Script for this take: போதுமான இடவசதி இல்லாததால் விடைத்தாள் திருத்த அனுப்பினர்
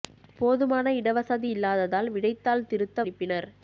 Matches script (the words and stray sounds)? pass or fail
pass